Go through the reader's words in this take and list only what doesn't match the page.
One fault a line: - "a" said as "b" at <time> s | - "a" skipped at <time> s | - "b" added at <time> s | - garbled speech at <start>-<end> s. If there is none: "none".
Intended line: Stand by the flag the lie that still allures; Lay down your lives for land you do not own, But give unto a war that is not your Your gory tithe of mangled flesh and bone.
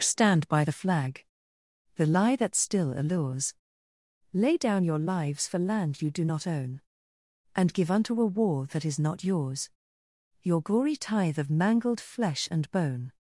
- "But" said as "And" at 7.5 s
- "your" said as "yours" at 9.2 s